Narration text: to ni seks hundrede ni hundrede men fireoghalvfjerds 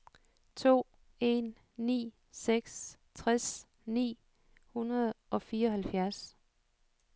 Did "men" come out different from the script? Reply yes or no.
yes